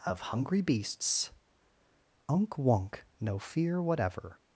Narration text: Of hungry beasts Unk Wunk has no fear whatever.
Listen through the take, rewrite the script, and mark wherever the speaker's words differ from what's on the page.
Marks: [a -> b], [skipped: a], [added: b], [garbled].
Of hungry beasts Unk Wunk [skipped: has] no fear whatever.